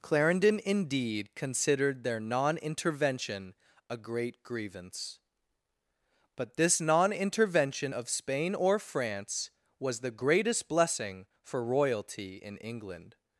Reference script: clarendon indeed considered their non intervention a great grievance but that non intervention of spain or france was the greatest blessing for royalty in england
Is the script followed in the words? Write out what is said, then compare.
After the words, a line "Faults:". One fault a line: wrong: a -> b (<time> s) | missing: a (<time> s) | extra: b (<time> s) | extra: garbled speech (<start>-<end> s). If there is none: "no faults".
clarendon indeed considered their non intervention a great grievance but this non intervention of spain or france was the greatest blessing for royalty in england
Faults:
wrong: that -> this (6.6 s)